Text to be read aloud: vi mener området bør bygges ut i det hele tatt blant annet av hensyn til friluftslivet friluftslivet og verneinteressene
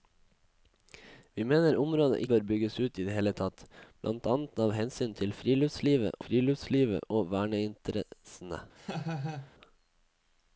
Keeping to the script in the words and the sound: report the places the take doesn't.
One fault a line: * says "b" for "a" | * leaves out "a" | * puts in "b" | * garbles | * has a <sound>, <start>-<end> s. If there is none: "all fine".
* has a laugh, 8.8-9.5 s